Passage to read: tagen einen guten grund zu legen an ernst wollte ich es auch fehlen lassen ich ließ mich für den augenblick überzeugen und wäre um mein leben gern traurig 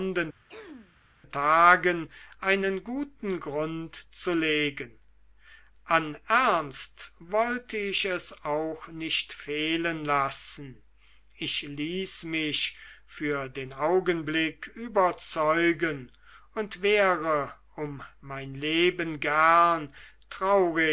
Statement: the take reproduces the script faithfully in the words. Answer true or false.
false